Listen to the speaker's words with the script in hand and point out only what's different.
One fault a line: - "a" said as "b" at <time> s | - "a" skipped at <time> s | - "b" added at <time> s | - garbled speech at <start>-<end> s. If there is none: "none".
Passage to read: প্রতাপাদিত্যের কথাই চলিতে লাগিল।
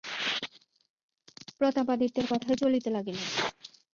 none